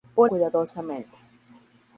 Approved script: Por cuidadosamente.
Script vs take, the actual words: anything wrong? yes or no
no